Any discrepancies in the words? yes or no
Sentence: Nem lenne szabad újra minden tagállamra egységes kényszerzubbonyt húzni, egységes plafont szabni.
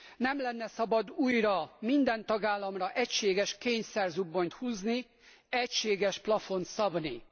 no